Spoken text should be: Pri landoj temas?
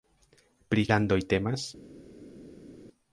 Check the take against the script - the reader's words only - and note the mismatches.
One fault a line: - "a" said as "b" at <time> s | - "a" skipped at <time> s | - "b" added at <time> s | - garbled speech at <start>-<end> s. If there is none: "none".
none